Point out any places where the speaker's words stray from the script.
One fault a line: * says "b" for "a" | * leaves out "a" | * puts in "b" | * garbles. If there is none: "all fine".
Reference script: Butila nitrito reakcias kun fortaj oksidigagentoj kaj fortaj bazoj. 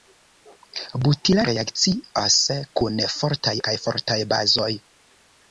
* leaves out "nitrito"
* leaves out "oksidigagentoj"